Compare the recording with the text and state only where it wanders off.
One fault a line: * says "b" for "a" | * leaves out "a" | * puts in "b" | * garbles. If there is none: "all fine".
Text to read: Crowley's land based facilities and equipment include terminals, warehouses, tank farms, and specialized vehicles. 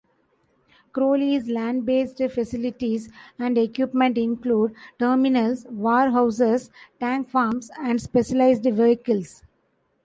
all fine